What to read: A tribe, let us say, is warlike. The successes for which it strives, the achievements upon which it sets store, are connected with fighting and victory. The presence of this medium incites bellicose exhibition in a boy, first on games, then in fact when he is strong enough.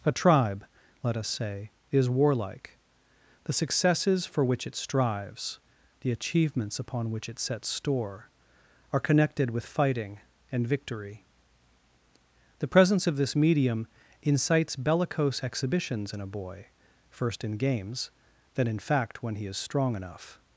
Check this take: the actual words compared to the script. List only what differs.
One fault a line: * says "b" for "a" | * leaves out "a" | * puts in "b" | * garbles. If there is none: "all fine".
* says "exhibitions" for "exhibition"
* says "in" for "on"